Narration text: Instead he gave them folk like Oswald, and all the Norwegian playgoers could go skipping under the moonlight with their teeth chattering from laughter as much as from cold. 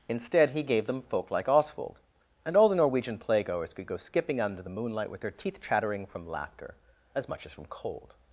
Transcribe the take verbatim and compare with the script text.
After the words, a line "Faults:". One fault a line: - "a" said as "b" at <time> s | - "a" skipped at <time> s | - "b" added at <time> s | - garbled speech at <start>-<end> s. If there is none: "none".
Instead he gave them folk like Oswald, and all the Norwegian playgoers could go skipping under the moonlight with their teeth chattering from laughter as much as from cold.
Faults:
none